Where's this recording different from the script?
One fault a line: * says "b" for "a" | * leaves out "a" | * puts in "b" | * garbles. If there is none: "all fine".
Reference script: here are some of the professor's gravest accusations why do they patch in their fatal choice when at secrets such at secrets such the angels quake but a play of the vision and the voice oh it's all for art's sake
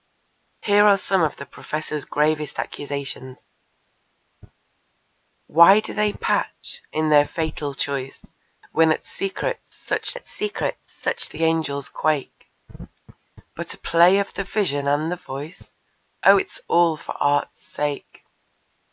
all fine